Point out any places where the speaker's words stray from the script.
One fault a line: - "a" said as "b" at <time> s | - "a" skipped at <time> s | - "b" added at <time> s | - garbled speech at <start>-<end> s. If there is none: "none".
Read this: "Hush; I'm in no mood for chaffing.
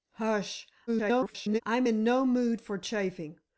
- garbled speech at 0.9-1.6 s